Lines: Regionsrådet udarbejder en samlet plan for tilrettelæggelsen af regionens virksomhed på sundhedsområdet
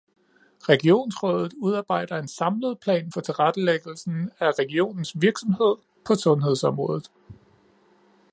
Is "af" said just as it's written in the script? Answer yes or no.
yes